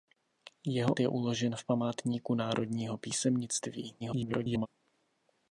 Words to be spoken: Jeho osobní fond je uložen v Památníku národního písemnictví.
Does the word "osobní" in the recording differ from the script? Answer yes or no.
yes